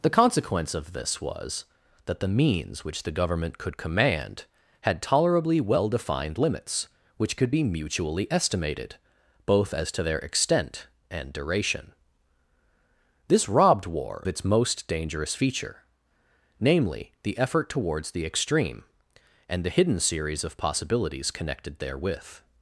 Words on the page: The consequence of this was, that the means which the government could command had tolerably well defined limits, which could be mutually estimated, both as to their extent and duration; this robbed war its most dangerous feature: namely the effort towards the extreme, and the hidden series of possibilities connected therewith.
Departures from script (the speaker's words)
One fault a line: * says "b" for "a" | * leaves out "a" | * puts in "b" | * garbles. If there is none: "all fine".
all fine